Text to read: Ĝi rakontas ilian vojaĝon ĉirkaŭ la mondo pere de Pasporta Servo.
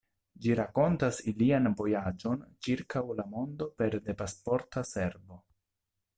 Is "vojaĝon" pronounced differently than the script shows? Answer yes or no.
no